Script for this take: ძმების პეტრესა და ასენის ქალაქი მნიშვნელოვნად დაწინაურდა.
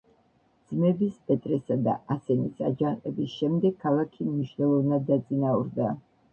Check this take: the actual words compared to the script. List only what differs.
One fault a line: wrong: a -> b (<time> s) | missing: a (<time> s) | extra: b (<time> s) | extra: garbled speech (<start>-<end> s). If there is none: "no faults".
extra: აჯანყების შემდეგ (2.7 s)